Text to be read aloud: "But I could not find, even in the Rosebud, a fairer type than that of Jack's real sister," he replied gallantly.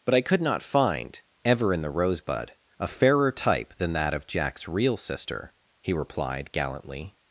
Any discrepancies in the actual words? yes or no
yes